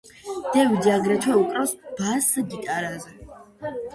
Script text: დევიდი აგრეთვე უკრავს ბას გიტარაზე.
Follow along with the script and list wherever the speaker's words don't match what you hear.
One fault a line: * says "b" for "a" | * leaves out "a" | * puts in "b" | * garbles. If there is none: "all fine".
all fine